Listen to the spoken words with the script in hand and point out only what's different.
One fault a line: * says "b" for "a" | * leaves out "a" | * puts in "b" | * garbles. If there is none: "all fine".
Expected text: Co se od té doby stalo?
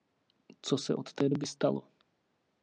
all fine